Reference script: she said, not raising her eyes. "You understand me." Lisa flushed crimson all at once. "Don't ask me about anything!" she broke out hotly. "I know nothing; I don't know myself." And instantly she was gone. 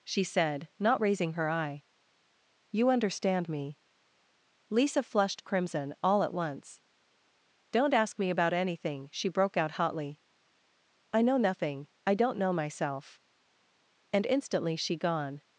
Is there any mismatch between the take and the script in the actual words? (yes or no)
yes